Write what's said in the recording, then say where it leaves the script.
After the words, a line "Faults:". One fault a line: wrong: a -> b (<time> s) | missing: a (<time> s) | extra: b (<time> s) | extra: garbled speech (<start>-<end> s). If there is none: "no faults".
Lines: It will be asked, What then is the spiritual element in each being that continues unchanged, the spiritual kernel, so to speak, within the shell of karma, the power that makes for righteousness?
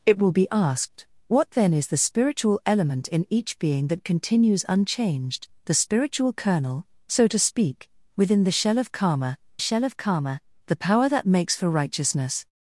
It will be asked, What then is the spiritual element in each being that continues unchanged, the spiritual kernel, so to speak, within the shell of karma shell of karma, the power that makes for righteousness?
Faults:
extra: shell of karma (9.6 s)